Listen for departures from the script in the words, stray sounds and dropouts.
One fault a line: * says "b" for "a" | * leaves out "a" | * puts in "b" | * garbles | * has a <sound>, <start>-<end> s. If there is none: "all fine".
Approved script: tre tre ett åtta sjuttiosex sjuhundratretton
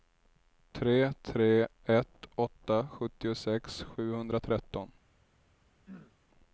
* has a throat clearing, 5.9-6.2 s